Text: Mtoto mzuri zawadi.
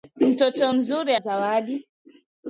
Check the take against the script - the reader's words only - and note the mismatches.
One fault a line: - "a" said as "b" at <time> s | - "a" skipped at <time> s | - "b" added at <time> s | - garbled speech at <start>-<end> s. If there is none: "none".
none